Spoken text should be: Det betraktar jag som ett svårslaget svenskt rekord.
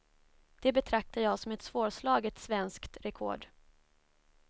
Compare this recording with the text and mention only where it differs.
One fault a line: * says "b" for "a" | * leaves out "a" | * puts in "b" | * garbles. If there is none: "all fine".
all fine